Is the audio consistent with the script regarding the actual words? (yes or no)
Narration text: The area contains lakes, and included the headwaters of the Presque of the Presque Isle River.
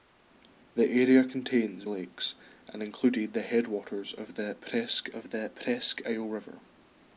yes